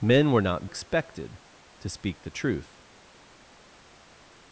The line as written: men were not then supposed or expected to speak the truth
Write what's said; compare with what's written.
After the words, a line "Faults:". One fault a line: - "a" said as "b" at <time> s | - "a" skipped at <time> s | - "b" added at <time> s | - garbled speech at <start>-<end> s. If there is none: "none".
men were not expected to speak the truth
Faults:
- "then supposed or" skipped at 0.7 s